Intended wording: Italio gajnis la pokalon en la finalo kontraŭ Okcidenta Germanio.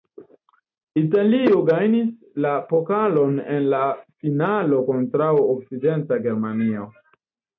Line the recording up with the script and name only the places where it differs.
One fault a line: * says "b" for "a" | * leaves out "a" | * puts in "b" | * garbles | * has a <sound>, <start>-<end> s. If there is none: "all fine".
all fine